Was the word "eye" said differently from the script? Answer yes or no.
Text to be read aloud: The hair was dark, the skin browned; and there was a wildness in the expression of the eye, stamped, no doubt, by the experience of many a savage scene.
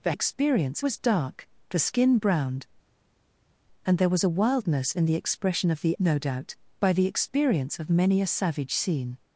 yes